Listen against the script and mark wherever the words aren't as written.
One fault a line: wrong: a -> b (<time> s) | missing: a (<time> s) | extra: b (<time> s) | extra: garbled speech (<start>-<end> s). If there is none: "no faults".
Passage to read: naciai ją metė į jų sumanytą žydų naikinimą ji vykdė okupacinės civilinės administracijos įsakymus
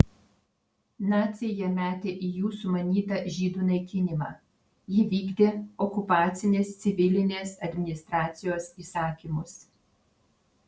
no faults